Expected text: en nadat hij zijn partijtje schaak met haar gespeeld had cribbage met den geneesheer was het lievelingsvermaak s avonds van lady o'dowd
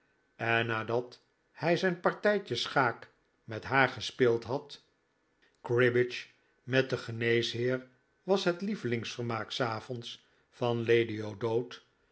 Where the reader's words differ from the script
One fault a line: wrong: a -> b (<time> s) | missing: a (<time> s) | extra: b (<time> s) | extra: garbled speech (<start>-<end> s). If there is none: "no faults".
no faults